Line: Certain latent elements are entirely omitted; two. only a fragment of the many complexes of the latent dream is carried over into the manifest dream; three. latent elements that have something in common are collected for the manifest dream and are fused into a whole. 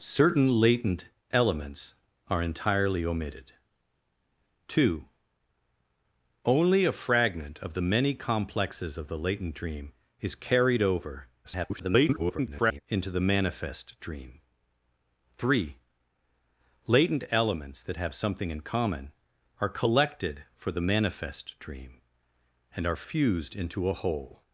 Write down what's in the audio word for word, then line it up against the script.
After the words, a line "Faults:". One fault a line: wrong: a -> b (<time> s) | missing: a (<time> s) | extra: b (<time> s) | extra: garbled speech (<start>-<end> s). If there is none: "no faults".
Certain latent elements are entirely omitted; two. only a fragment of the many complexes of the latent dream is carried over [garbled] into the manifest dream; three. latent elements that have something in common are collected for the manifest dream and are fused into a whole.
Faults:
extra: garbled speech (11.4-12.8 s)